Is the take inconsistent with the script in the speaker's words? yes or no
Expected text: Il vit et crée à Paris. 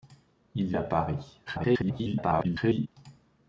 yes